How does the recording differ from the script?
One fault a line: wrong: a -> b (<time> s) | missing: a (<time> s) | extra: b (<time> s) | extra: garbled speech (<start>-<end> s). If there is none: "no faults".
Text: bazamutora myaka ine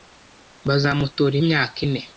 no faults